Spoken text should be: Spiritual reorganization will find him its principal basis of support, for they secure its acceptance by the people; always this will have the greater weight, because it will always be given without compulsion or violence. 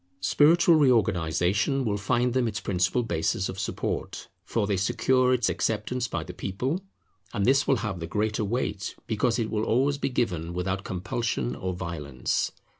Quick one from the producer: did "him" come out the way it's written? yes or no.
no